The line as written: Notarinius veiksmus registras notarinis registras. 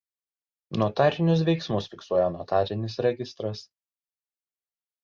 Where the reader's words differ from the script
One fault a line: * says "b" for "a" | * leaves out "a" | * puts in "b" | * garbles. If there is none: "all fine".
* says "fiksuoja" for "registras"